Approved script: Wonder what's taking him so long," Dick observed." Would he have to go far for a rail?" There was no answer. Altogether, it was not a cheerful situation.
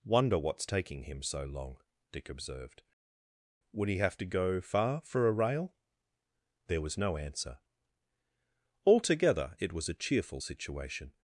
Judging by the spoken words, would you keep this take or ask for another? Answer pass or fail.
fail